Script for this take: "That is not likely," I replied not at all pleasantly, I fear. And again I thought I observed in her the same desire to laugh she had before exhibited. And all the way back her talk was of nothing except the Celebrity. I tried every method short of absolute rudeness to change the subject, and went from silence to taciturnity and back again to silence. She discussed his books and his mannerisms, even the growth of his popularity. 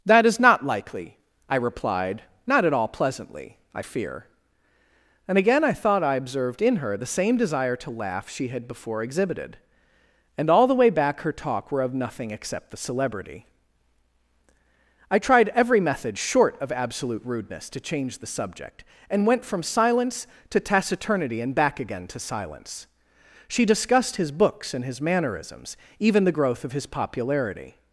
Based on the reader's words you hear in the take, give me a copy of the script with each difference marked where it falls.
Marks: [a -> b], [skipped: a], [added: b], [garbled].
"That is not likely," I replied not at all pleasantly, I fear. And again I thought I observed in her the same desire to laugh she had before exhibited. And all the way back her talk [was -> were] of nothing except the Celebrity. I tried every method short of absolute rudeness to change the subject, and went from silence to taciturnity and back again to silence. She discussed his books and his mannerisms, even the growth of his popularity.